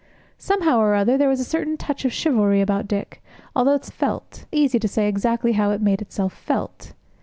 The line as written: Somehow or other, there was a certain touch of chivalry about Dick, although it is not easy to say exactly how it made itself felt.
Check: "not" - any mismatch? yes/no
yes